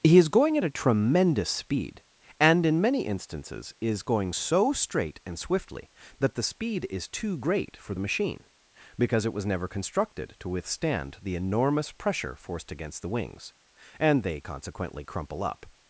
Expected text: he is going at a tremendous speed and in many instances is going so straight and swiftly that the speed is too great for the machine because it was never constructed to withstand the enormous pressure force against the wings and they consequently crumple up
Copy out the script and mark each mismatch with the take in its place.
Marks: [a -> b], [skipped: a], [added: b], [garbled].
he is going at a tremendous speed and in many instances is going so straight and swiftly that the speed is too great for the machine because it was never constructed to withstand the enormous pressure [force -> forced] against the wings and they consequently crumple up